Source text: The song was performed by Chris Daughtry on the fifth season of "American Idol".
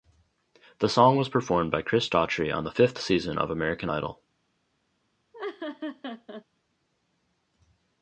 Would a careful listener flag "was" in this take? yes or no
no